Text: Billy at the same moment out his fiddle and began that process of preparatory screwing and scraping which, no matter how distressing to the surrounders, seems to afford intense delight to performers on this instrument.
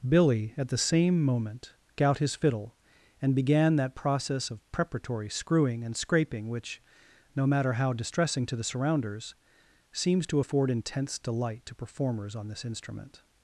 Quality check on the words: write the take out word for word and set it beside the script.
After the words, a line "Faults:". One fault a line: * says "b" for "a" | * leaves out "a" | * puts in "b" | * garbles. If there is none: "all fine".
Billy at the same moment out his fiddle and began that process of preparatory screwing and scraping which, no matter how distressing to the surrounders, seems to afford intense delight to performers on this instrument.
Faults:
all fine